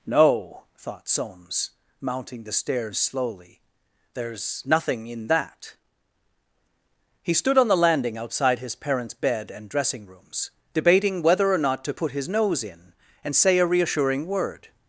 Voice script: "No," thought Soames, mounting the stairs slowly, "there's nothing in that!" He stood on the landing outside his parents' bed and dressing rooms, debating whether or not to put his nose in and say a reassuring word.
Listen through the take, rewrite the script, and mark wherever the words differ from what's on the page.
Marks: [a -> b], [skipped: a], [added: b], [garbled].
"No," thought Soames, mounting the stairs slowly, "there's nothing in that!" He stood on the landing outside his parents' bed and dressing rooms, debating whether or not to put his nose in and say a reassuring word.